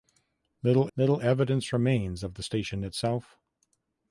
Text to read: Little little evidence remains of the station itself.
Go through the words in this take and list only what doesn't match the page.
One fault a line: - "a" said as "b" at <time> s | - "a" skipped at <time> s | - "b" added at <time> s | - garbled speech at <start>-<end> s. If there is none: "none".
none